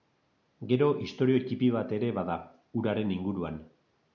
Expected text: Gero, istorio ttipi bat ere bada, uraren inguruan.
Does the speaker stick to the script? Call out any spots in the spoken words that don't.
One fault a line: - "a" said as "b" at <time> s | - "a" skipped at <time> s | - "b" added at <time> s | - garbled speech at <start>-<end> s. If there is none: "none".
none